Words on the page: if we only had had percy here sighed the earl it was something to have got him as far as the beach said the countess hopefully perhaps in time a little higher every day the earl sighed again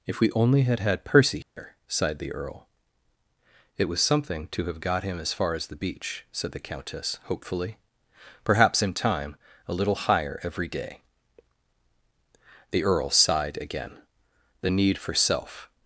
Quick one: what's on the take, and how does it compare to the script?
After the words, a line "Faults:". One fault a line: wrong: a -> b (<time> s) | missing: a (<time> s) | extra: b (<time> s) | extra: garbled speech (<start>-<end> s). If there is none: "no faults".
if we only had had percy here sighed the earl it was something to have got him as far as the beach said the countess hopefully perhaps in time a little higher every day the earl sighed again the need for self
Faults:
extra: the need for self (14.6 s)